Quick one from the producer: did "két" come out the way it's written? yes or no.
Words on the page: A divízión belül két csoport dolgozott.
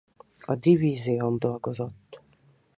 no